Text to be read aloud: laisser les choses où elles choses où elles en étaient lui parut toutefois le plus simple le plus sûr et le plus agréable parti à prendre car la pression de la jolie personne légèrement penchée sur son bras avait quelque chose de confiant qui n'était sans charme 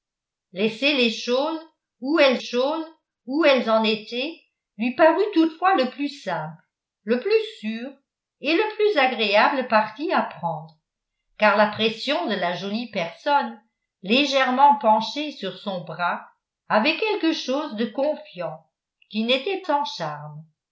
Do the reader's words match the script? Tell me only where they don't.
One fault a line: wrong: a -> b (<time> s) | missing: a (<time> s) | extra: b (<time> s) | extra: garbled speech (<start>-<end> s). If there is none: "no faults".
no faults